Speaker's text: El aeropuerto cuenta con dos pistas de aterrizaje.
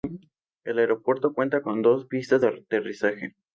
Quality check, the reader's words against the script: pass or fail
pass